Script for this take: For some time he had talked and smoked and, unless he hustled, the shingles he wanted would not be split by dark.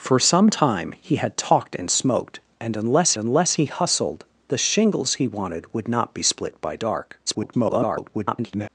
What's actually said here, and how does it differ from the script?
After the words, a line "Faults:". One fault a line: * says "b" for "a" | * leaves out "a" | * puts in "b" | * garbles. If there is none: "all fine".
For some time he had talked and smoked and, unless unless he hustled, the shingles he wanted would not be split by dark. [garbled]
Faults:
* puts in "unless"
* garbles